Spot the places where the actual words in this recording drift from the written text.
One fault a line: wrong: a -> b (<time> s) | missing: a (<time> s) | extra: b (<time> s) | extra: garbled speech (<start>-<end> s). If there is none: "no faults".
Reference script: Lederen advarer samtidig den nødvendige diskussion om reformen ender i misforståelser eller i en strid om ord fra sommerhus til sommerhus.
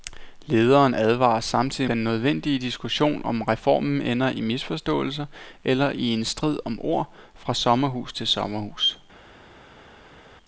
no faults